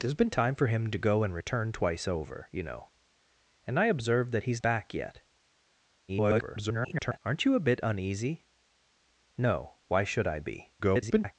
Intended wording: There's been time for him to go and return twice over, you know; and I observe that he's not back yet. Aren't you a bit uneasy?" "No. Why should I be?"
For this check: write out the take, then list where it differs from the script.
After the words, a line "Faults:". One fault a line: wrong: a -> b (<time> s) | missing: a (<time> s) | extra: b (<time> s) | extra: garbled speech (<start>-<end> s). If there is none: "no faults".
There's been time for him to go and return twice over, you know; and I observe that he's back yet. [garbled] Aren't you a bit uneasy?" "No. Why should I be?" [garbled]
Faults:
missing: not (4.6 s)
extra: garbled speech (6.1-7.2 s)
extra: garbled speech (10.8-11.3 s)